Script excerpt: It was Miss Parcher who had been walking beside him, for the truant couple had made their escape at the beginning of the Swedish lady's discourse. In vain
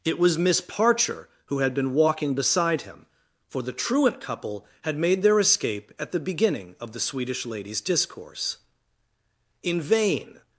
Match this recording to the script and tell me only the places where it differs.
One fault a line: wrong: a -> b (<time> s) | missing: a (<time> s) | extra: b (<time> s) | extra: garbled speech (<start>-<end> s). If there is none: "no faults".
no faults